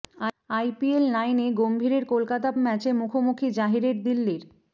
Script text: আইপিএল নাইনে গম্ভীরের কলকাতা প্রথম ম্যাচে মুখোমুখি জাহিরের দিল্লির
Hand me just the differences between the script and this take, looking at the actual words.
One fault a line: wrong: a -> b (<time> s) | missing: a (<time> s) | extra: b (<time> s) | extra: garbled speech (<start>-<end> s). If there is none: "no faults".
missing: প্রথম (2.5 s)